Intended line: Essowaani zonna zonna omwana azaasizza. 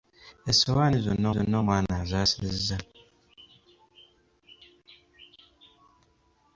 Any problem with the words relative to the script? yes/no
no